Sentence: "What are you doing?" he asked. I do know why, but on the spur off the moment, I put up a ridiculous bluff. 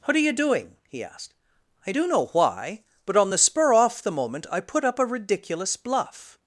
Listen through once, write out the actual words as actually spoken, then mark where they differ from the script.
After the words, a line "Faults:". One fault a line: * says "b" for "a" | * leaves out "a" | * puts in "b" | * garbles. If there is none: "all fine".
"What are you doing?" he asked. I do know why, but on the spur off the moment, I put up a ridiculous bluff.
Faults:
all fine